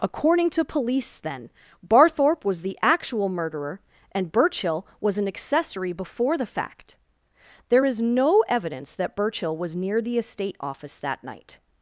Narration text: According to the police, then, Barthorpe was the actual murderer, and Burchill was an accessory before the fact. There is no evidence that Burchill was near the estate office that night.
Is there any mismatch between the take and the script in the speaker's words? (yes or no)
yes